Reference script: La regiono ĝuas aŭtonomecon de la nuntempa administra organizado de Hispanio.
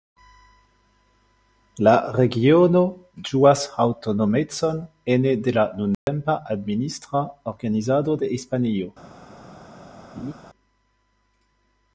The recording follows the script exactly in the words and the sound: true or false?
false